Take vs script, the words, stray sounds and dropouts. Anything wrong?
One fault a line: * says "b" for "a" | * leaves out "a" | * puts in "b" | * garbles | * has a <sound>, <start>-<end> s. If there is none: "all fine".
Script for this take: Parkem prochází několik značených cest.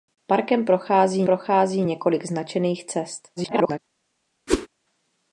* puts in "prochází"
* garbles
* has a whoosh, 4.5-4.7 s